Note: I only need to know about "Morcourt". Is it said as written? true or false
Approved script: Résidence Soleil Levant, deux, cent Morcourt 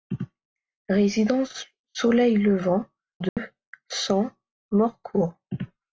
true